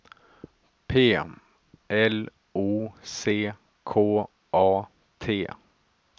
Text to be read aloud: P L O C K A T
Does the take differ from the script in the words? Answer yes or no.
no